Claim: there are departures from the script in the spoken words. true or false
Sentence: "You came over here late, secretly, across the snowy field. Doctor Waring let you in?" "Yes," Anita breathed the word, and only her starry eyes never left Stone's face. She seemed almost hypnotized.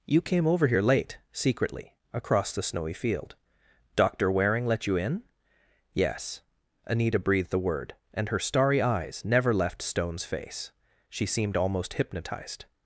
true